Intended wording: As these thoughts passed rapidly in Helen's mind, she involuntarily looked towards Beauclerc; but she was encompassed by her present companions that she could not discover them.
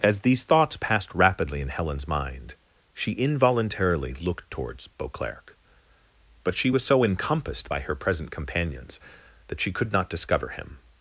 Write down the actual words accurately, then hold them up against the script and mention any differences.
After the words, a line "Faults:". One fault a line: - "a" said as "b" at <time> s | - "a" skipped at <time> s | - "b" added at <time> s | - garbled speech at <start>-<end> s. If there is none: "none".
As these thoughts passed rapidly in Helen's mind, she involuntarily looked towards Beauclerc; but she was so encompassed by her present companions that she could not discover him.
Faults:
- "so" added at 6.9 s
- "them" said as "him" at 10.5 s